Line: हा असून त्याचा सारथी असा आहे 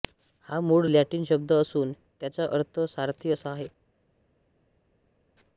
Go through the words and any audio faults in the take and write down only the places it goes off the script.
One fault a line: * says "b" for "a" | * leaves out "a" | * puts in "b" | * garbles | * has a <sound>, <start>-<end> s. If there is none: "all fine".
* puts in "मूळ लॅटिन शब्द"
* puts in "अर्थ"